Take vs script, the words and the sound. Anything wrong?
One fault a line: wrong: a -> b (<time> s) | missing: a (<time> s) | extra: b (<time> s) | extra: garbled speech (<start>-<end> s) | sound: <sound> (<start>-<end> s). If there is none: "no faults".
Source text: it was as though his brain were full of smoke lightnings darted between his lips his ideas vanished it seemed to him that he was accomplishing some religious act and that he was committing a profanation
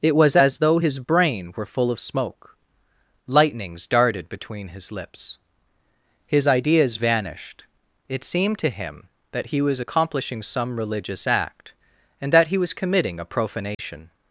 sound: dropout (13.7-13.8 s)